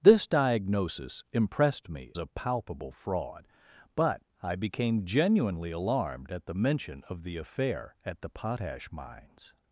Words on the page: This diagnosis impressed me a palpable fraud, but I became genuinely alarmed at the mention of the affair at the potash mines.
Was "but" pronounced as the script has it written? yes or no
yes